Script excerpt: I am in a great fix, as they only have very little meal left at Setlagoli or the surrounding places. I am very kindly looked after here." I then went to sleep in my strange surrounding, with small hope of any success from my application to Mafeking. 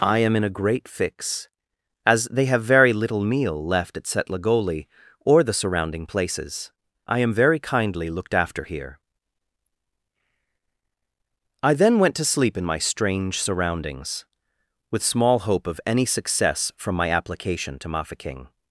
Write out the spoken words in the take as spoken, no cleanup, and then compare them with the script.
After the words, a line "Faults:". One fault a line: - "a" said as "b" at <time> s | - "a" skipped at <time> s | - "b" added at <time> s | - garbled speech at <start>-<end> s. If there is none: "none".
I am in a great fix, as they have very little meal left at Setlagoli or the surrounding places. I am very kindly looked after here." I then went to sleep in my strange surroundings, with small hope of any success from my application to Mafeking.
Faults:
- "only" skipped at 2.5 s
- "surrounding" said as "surroundings" at 13.4 s